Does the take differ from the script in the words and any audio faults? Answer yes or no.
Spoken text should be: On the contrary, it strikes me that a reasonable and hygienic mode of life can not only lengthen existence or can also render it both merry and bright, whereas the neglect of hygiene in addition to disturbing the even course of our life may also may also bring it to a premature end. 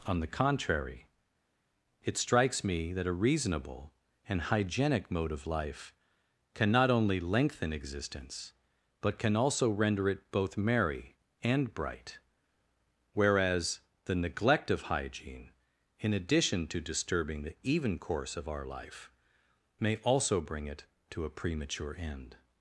yes